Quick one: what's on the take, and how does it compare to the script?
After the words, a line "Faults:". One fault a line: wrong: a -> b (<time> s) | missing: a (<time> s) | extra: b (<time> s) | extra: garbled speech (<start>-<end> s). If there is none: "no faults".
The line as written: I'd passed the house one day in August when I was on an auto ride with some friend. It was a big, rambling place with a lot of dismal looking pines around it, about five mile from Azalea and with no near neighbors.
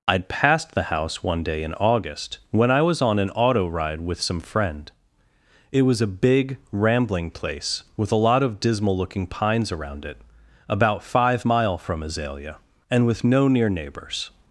I'd passed the house one day in August when I was on an auto ride with some friend. It was a big, rambling place with a lot of dismal looking pines around it, about five mile from Azalea and with no near neighbors.
Faults:
no faults